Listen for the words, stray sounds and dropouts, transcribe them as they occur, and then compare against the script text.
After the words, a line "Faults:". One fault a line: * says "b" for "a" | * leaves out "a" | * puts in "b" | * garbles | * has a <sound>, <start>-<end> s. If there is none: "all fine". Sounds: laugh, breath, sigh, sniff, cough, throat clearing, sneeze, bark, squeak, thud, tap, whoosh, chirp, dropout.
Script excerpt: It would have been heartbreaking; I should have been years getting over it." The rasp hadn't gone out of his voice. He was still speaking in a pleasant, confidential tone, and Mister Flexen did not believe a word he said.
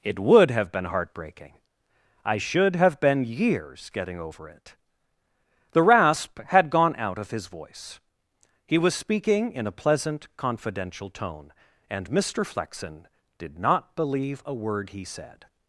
It would have been heartbreaking; I should have been years getting over it." The rasp had gone out of his voice. He was speaking in a pleasant, confidential tone, and Mister Flexen did not believe a word he said.
Faults:
* says "had" for "hadn't"
* leaves out "still"